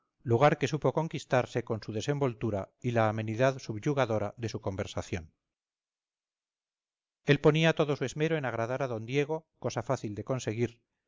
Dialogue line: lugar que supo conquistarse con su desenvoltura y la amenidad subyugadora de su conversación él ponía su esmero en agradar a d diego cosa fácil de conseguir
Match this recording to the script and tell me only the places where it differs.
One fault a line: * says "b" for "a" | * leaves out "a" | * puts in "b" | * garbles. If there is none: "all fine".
* puts in "todo"